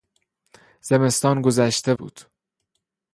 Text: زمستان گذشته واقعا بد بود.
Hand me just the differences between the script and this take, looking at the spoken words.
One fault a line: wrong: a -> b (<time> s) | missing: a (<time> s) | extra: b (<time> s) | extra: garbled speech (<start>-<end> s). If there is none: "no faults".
missing: واقعا بد (1.9 s)